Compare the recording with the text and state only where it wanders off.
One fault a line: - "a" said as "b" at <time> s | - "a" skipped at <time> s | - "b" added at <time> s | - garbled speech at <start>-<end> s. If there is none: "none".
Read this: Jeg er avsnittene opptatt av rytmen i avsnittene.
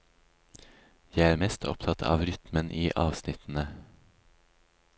- "avsnittene" said as "mest" at 1.4 s